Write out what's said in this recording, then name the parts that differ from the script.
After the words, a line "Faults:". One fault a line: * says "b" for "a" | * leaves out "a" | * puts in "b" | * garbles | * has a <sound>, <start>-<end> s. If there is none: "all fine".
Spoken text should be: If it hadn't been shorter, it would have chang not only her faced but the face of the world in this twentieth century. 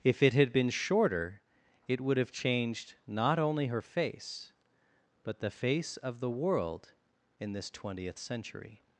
If it had been shorter, it would have changed not only her face but the face of the world in this twentieth century.
Faults:
* says "had" for "hadn't"
* says "changed" for "chang"
* says "face" for "faced"